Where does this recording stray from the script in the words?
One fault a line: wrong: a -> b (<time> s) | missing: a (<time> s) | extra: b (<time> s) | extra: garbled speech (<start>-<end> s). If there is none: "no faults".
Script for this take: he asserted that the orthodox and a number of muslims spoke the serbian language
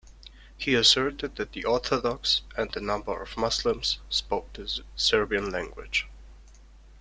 no faults